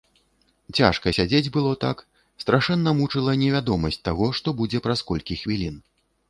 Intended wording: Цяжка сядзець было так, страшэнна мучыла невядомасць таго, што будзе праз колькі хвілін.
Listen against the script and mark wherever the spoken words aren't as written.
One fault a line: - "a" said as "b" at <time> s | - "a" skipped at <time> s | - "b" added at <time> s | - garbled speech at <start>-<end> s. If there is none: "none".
none